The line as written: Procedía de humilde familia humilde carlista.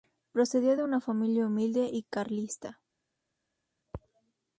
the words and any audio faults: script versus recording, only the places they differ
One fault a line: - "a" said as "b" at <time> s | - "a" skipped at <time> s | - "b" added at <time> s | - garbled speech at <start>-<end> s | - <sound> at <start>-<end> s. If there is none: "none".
- "humilde" said as "una" at 0.8 s
- "y" added at 1.9 s